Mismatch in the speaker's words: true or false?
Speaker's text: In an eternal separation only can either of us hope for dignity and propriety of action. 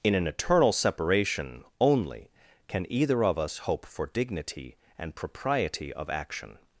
false